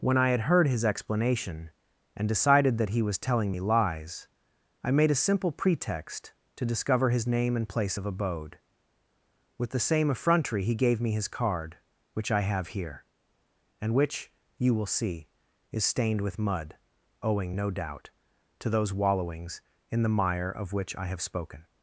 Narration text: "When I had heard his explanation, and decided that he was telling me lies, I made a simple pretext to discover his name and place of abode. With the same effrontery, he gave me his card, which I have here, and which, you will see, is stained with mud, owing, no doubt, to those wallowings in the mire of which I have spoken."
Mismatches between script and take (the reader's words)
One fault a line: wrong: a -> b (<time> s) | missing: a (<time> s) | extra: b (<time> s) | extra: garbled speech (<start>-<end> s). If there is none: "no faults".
no faults